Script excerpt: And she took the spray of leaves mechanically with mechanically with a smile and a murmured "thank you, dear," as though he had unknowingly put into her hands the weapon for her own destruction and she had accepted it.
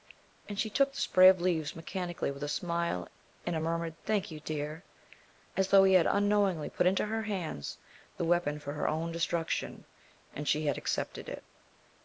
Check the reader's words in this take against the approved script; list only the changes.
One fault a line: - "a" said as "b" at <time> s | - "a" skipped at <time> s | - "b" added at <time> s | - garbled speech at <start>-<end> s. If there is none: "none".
- "mechanically with" skipped at 2.4 s